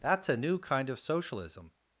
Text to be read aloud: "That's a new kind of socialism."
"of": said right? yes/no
yes